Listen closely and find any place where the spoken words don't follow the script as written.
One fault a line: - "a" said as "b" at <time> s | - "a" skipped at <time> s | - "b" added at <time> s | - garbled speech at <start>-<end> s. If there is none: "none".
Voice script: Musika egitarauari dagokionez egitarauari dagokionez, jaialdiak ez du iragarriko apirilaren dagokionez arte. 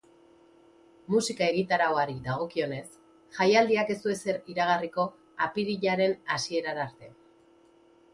- "egitarauari dagokionez" skipped at 2.9 s
- "ezer" added at 4.1 s
- "dagokionez" said as "hasierara" at 6.4 s